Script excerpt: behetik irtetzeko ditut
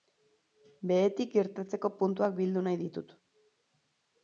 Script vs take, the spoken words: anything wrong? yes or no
yes